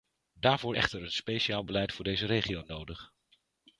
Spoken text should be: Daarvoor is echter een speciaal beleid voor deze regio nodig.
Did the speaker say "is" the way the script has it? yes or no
no